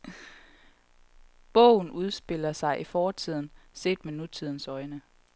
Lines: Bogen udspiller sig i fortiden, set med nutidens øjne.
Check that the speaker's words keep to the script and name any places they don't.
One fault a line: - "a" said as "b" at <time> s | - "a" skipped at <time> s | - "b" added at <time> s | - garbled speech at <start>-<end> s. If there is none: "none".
none